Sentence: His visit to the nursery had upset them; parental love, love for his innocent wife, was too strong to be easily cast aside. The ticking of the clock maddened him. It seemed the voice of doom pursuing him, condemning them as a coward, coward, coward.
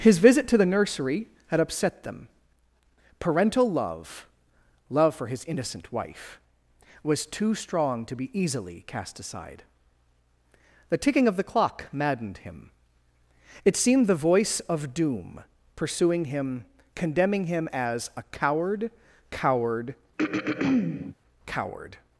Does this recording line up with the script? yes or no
no